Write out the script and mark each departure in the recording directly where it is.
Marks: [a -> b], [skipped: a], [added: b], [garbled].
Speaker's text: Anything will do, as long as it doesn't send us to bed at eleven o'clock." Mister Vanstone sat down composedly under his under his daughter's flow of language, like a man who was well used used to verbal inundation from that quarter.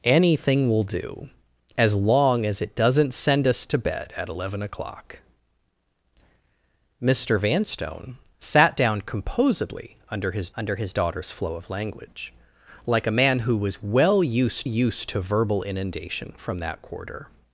Anything will do, as long as it doesn't send us to bed at eleven o'clock." Mister Vanstone sat down composedly under his under his daughter's flow of language, like a man who was well used used to verbal inundation from that quarter.